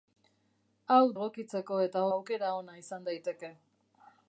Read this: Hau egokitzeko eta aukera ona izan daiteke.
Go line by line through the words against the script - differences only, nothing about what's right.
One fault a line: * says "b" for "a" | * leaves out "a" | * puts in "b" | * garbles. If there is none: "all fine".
all fine